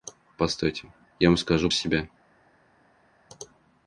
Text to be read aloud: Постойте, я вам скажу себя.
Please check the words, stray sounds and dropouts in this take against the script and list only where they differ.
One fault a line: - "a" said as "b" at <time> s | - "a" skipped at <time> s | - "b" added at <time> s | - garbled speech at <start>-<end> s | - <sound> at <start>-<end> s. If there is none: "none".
none